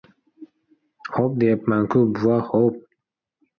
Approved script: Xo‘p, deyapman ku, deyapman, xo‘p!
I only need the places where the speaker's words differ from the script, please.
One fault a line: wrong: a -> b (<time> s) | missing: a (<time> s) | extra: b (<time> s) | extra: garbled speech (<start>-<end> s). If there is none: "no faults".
wrong: deyapman -> bova (2.1 s)